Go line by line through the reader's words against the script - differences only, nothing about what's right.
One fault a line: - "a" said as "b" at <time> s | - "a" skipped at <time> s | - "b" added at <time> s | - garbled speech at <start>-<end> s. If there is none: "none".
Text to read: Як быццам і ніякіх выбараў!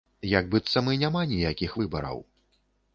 - "няма" added at 1.0 s